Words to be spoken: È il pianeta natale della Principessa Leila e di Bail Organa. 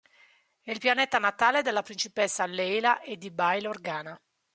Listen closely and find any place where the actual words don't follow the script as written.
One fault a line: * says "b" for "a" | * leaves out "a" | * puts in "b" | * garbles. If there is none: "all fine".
all fine